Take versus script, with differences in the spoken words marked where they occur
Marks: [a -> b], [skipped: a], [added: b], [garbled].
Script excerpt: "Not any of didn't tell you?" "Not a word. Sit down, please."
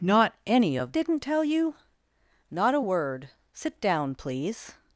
"Not any of didn't tell you?" "Not a word. Sit down, please."